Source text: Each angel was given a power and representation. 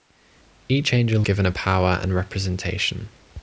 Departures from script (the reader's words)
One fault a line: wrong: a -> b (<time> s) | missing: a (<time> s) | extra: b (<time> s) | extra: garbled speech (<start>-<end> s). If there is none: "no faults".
missing: was (1.2 s)